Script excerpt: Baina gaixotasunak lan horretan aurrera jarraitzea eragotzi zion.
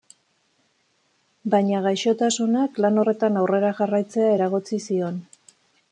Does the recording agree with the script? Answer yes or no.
yes